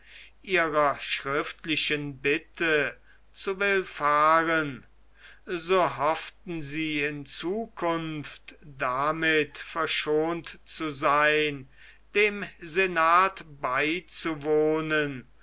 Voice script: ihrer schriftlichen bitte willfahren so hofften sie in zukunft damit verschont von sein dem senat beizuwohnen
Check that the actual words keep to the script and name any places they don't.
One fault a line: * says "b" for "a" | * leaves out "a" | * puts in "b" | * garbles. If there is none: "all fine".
* puts in "zu"
* says "zu" for "von"